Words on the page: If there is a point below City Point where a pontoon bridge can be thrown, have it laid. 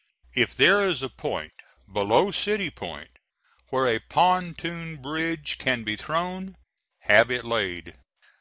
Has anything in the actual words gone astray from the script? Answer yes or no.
no